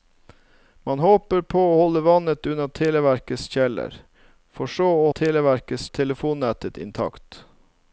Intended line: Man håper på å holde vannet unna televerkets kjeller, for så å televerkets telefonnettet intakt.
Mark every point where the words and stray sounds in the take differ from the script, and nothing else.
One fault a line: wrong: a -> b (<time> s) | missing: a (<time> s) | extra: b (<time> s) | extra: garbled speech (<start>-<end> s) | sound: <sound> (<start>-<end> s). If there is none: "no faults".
no faults